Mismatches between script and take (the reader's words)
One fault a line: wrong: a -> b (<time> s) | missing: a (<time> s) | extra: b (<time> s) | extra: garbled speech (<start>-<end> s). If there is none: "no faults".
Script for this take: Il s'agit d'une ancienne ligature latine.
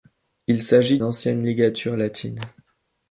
missing: d'une (1.0 s)